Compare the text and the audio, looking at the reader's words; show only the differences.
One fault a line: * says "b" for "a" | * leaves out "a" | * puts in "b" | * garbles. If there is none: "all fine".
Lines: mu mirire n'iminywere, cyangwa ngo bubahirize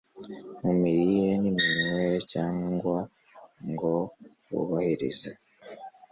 all fine